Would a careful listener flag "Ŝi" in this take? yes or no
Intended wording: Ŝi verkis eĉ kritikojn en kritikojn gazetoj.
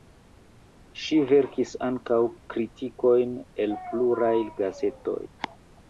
no